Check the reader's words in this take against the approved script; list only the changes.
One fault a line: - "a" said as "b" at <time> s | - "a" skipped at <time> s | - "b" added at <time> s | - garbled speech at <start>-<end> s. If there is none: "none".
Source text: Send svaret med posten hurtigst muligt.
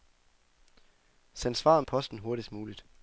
- "med" skipped at 1.8 s